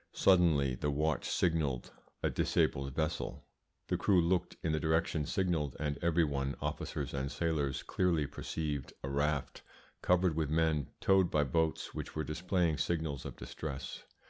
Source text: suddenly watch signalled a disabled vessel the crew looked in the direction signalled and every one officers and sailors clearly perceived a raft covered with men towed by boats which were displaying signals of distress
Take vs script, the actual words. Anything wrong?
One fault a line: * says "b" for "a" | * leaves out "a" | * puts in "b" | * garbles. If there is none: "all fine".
* puts in "the"